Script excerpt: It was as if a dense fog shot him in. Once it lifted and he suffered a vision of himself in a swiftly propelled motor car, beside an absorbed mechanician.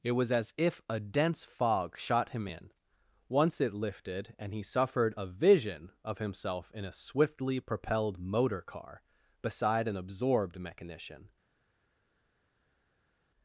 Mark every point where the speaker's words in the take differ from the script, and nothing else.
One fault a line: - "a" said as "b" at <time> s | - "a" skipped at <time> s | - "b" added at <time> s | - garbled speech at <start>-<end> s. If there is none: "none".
none